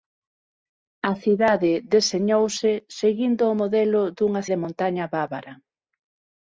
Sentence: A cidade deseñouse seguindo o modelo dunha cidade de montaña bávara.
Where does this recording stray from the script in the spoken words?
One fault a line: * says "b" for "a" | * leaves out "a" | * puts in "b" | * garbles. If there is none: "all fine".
* leaves out "cidade"